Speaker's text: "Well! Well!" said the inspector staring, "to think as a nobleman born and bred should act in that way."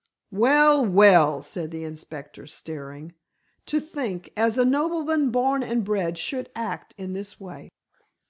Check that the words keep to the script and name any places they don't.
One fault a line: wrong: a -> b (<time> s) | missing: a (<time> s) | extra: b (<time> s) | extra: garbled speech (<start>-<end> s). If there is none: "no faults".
wrong: that -> this (7.1 s)